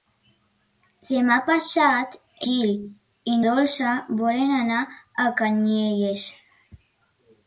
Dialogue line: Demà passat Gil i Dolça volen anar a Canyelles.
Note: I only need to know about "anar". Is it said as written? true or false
true